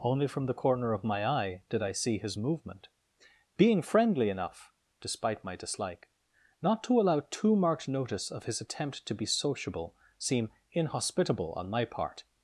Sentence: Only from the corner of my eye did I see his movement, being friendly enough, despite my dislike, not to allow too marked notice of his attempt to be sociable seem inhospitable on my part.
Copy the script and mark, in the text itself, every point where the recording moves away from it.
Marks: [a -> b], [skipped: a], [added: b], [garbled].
Only from the corner of my eye did I see his movement, being friendly enough, despite my dislike, not to allow too marked notice of his attempt to be sociable seem inhospitable on my part.